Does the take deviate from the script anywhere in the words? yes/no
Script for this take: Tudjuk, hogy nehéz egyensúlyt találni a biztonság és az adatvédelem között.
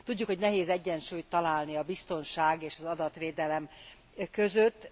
no